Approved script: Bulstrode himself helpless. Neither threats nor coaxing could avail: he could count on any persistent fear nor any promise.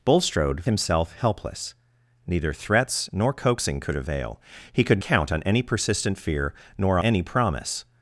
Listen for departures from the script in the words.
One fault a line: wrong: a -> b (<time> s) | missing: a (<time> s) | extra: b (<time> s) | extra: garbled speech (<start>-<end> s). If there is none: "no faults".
no faults